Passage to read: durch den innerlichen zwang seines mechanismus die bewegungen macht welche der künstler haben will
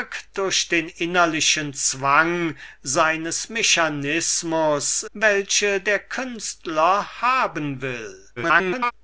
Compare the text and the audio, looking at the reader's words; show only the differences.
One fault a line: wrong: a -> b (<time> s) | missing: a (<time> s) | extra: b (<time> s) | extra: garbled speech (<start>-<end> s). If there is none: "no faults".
missing: die bewegungen macht (5.0 s)
extra: garbled speech (8.4-8.9 s)